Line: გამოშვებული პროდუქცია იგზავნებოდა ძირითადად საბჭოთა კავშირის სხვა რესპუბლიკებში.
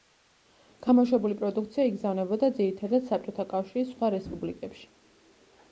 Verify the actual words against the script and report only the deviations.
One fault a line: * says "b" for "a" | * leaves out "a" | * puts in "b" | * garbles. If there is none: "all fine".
all fine